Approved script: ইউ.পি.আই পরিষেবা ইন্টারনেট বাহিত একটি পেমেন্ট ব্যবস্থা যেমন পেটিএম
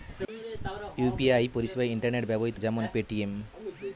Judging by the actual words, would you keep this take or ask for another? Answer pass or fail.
fail